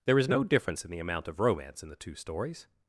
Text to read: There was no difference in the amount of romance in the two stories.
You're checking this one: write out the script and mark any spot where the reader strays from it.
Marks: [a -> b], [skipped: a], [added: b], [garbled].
There [was -> is] no difference in the amount of romance in the two stories.